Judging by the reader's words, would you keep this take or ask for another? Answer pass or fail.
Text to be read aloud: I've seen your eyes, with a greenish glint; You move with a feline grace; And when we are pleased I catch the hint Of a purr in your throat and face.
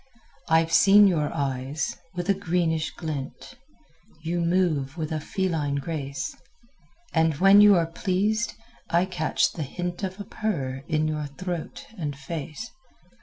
fail